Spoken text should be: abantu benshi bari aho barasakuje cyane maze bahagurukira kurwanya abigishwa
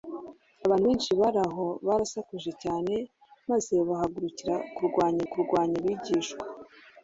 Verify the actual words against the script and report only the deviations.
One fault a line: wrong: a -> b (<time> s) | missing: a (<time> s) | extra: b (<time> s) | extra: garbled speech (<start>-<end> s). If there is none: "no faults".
extra: kurwanya (5.3 s)